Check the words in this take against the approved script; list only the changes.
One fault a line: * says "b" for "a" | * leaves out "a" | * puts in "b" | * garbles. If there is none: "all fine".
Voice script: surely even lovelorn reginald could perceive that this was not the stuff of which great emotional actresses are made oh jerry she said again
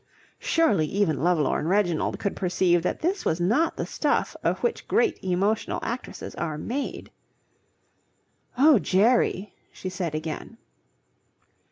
all fine